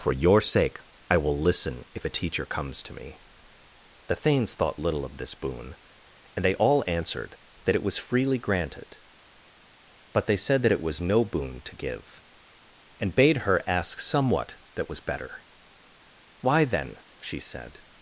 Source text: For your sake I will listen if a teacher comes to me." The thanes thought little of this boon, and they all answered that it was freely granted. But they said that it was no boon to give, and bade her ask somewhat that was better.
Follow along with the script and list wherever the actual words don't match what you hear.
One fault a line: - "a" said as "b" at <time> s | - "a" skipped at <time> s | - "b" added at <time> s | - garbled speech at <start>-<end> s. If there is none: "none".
- "Why then she said" added at 16.4 s